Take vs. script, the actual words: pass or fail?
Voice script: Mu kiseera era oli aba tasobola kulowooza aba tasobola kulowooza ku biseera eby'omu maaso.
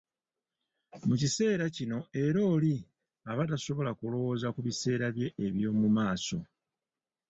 fail